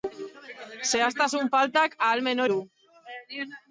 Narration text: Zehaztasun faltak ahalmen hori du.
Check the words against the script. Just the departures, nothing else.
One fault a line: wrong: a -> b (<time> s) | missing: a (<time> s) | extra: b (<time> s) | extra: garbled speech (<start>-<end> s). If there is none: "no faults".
missing: hori (2.4 s)